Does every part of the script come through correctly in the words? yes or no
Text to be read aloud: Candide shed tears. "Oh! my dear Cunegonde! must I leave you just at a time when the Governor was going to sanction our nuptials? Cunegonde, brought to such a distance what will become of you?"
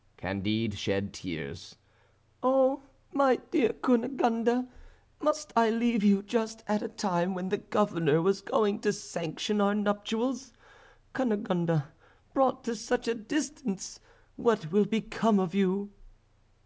yes